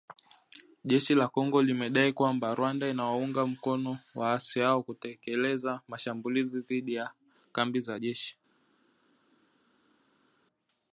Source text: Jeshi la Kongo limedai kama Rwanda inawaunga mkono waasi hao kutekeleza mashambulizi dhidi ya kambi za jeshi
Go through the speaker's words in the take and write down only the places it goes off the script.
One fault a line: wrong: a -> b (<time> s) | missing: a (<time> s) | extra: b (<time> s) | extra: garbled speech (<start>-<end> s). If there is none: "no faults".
wrong: kama -> kwamba (2.1 s)